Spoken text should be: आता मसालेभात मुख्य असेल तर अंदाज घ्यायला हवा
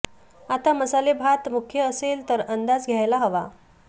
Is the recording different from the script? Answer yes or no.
no